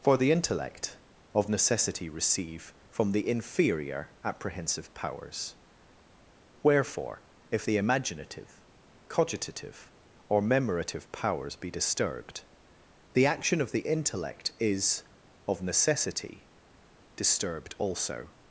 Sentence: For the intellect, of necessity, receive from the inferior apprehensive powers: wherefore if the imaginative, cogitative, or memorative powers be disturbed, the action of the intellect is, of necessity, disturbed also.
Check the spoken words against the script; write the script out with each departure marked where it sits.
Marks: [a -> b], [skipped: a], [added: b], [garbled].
For the intellect, of necessity, receive from the inferior apprehensive powers: wherefore if the imaginative, cogitative, or memorative powers be disturbed, the action of the intellect is, of necessity, disturbed also.